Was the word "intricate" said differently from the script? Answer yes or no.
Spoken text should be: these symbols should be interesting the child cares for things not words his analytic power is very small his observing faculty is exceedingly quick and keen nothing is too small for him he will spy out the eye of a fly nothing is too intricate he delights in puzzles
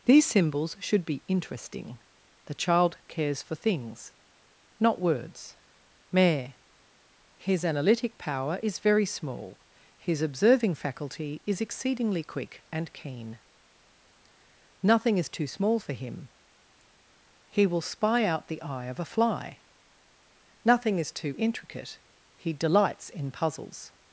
no